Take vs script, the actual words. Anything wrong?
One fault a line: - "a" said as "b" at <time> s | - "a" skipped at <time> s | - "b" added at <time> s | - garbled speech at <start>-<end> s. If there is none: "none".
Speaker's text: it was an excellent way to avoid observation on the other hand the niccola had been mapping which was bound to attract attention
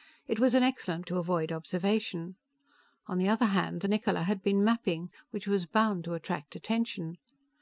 - "way" skipped at 1.1 s